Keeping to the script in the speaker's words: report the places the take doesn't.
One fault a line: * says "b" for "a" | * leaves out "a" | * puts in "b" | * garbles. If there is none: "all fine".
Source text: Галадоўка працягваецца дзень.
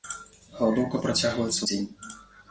all fine